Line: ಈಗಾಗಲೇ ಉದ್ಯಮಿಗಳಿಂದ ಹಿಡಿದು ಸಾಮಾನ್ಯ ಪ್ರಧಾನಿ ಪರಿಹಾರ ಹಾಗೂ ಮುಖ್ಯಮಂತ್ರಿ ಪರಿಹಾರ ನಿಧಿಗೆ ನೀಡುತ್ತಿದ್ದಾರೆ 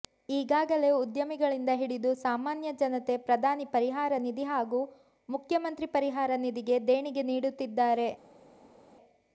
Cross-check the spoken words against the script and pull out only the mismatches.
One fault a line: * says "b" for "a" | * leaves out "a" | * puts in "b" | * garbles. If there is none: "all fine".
* puts in "ಜನತೆ"
* puts in "ನಿಧಿ"
* puts in "ದೇಣಿಗೆ"